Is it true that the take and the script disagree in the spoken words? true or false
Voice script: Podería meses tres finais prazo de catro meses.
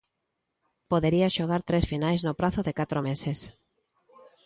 true